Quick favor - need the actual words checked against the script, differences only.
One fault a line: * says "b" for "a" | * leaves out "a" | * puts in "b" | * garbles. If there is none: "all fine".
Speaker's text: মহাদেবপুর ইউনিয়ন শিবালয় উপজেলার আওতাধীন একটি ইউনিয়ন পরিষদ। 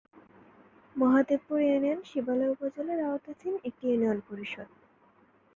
all fine